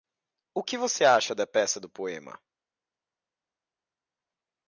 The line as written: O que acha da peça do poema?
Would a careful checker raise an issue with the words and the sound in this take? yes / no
yes